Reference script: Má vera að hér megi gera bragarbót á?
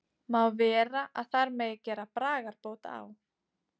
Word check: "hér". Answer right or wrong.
wrong